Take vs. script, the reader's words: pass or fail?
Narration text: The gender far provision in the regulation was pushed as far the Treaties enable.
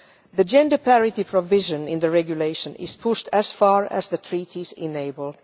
fail